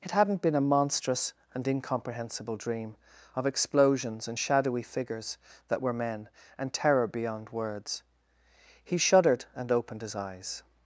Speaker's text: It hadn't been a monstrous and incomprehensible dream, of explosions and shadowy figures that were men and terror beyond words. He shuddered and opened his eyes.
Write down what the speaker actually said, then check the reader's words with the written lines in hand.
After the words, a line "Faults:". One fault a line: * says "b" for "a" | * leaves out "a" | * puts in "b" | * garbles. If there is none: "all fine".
It hadn't been a monstrous and incomprehensible dream, of explosions and shadowy figures that were men and terror beyond words. He shuddered and opened his eyes.
Faults:
all fine